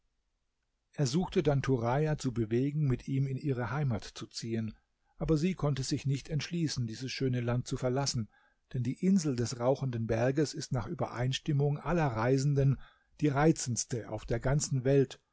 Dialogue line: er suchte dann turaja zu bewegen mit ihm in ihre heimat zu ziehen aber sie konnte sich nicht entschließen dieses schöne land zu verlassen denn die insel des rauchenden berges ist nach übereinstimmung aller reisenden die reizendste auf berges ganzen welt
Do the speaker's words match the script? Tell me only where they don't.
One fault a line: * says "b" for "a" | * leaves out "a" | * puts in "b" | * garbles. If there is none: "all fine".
* says "der" for "berges"